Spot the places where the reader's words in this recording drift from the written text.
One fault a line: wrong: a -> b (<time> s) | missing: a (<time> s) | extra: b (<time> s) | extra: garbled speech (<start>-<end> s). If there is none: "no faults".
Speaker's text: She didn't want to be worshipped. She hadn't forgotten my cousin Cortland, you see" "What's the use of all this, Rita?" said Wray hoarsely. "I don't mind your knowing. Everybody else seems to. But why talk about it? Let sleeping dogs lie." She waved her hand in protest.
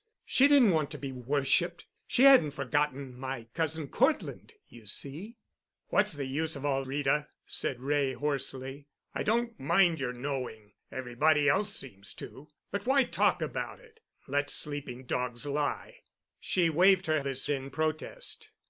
missing: this (6.8 s)
wrong: hand -> this (17.2 s)